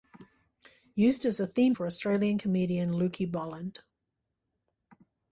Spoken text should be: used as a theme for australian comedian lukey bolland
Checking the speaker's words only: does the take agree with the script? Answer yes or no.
yes